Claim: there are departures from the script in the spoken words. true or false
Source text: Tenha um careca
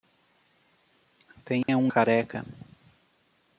false